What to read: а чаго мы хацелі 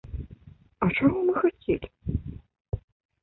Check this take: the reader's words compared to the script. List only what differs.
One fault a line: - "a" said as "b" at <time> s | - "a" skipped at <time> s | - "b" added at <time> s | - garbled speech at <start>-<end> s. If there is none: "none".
none